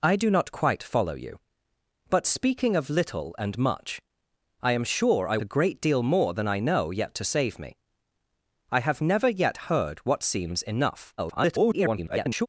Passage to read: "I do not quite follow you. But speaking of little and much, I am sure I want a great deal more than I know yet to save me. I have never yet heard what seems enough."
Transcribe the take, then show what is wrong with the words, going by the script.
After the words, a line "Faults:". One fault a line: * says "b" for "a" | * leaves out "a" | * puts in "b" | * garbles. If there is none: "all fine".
"I do not quite follow you. But speaking of little and much, I am sure I a great deal more than I know yet to save me. I have never yet heard what seems enough." [garbled]
Faults:
* leaves out "want"
* garbles